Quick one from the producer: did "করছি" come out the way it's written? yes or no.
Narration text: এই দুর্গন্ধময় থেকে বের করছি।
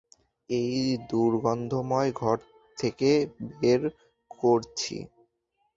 yes